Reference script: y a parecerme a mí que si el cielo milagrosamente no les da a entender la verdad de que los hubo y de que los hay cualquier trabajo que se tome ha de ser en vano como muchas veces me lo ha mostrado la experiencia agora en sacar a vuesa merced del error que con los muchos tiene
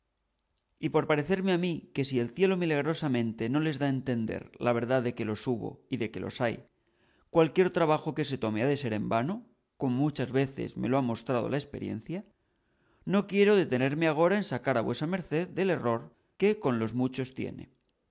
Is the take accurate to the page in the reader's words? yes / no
no